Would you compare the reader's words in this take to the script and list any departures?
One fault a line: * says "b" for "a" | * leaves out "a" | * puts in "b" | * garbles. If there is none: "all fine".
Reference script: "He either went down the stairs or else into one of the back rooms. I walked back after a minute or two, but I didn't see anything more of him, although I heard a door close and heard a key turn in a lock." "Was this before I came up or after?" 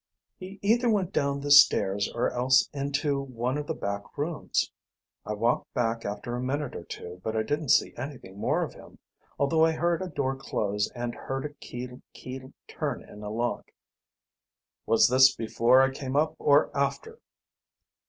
* puts in "key"